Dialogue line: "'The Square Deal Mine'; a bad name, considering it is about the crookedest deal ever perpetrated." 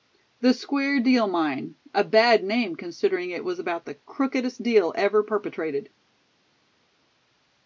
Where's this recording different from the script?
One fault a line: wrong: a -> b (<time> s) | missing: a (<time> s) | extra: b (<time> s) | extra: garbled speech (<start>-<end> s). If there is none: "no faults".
wrong: is -> was (3.4 s)